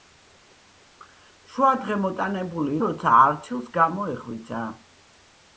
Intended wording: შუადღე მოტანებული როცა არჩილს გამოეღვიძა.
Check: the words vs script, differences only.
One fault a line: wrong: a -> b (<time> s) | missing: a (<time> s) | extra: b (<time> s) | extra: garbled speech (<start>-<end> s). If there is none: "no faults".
no faults